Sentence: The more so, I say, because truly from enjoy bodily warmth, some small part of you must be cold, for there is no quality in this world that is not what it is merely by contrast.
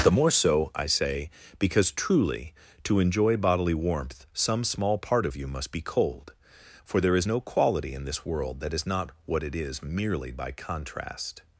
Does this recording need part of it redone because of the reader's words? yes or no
yes